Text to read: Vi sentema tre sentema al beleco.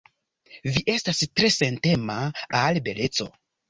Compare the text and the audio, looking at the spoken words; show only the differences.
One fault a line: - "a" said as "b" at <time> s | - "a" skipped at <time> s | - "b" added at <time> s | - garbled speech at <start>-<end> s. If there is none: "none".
- "sentema" said as "estas" at 0.9 s